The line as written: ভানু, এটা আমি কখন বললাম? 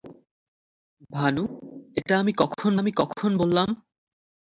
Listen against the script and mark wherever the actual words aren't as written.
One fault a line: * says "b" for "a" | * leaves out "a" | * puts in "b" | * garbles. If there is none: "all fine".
* puts in "আমি কখন"